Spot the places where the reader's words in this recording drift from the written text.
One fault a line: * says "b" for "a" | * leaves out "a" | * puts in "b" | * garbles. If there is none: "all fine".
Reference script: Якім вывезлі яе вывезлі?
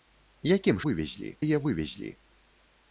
all fine